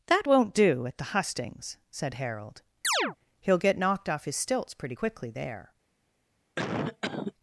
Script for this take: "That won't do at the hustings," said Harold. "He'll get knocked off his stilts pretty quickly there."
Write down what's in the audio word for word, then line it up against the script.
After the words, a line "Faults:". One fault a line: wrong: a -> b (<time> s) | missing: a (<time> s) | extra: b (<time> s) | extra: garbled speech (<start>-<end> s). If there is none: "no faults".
"That won't do at the hustings," said Harold. "He'll get knocked off his stilts pretty quickly there."
Faults:
no faults